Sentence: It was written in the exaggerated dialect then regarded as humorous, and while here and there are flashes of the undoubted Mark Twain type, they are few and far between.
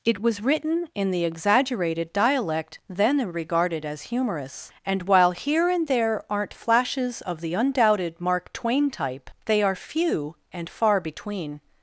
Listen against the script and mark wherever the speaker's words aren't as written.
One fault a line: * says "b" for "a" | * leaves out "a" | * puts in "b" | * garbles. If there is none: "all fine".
* says "aren't" for "are"